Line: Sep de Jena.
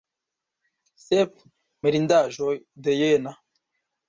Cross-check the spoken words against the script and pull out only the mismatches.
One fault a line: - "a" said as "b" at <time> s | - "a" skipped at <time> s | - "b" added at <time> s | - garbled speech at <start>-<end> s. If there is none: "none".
- "mirindaĵoj" added at 1.9 s